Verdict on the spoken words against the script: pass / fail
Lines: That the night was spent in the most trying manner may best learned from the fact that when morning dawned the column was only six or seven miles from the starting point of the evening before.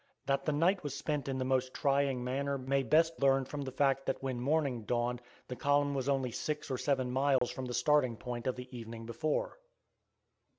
pass